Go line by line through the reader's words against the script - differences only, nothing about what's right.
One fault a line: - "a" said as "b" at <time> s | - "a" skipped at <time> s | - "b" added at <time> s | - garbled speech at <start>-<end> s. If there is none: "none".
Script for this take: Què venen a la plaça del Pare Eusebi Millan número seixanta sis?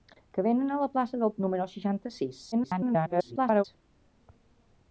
- "Pare Eusebi Millan" skipped at 1.3 s
- garbled speech at 2.5-3.6 s